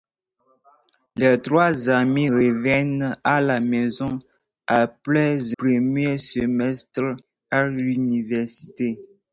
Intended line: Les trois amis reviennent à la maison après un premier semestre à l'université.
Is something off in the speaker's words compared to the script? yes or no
yes